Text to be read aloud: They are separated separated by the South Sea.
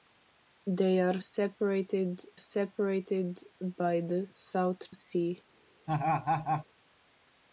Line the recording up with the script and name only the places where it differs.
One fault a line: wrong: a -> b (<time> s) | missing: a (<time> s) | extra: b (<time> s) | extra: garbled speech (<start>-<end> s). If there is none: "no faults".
no faults